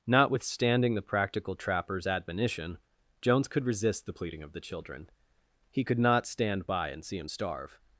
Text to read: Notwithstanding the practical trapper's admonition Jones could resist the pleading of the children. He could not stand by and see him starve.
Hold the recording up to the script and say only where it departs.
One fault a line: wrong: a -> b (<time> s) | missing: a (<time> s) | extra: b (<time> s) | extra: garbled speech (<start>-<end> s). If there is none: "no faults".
no faults